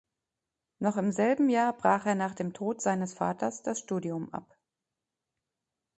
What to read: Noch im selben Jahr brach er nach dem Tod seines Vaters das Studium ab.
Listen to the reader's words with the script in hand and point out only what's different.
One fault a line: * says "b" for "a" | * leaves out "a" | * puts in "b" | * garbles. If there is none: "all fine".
all fine